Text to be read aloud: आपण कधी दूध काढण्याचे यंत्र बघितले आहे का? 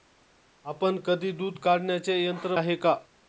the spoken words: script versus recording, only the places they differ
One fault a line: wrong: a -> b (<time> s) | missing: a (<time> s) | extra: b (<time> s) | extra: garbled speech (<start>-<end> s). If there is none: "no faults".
missing: बघितले (2.5 s)